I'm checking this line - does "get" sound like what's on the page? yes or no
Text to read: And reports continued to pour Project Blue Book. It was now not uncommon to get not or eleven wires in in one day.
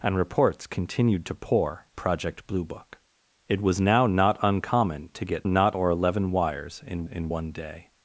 yes